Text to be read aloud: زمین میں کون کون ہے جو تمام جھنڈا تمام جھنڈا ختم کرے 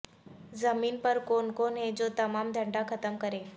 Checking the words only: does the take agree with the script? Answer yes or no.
no